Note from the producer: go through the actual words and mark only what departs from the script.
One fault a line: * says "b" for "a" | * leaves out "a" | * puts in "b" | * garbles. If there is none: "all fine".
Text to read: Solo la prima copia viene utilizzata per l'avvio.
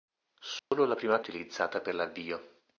* leaves out "copia viene"